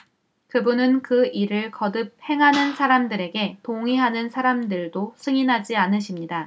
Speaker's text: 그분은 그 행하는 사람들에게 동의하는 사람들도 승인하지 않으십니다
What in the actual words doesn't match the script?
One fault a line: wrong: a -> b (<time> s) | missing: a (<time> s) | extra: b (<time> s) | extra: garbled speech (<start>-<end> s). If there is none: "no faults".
extra: 일을 거듭 (1.3 s)